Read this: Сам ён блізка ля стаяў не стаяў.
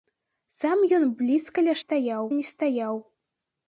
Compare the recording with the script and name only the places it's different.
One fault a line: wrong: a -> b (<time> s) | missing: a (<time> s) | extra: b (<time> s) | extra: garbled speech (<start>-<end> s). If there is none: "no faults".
no faults